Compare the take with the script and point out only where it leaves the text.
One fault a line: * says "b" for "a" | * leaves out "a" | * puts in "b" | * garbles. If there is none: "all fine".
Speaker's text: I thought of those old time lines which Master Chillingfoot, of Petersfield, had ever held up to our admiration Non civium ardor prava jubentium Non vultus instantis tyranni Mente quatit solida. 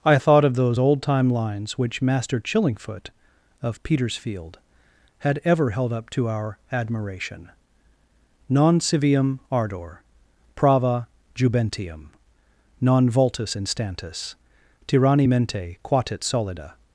all fine